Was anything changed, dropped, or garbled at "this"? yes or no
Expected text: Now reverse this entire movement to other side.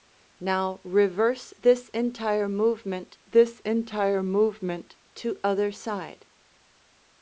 no